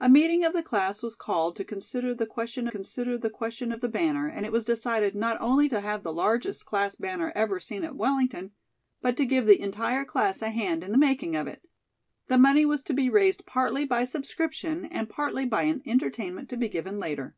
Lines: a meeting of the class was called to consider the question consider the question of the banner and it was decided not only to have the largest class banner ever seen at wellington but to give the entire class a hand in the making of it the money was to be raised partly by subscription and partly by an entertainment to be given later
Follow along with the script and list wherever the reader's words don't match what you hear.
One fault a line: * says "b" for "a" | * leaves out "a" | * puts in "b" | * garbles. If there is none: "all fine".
all fine